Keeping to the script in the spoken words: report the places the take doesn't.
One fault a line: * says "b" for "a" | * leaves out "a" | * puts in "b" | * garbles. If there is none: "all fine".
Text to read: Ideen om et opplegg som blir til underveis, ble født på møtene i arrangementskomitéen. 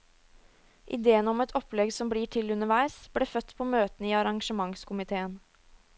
all fine